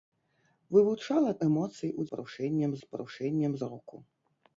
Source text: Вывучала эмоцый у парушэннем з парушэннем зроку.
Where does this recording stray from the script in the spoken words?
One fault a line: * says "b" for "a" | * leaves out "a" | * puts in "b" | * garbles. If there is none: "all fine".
all fine